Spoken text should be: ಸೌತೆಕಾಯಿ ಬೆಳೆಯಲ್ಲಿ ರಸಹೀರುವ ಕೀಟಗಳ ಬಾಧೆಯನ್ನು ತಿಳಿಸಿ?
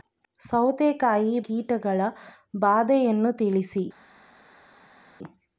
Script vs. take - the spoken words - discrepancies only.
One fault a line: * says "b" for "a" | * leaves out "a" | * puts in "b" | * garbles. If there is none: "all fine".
* leaves out "ಬೆಳೆಯಲ್ಲಿ ರಸಹೀರುವ"